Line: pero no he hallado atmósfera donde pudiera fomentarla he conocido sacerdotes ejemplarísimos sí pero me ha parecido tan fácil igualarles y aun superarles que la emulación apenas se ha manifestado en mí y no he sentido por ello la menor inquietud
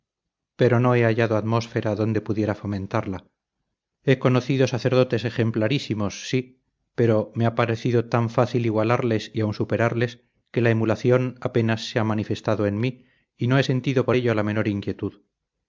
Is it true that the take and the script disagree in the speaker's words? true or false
false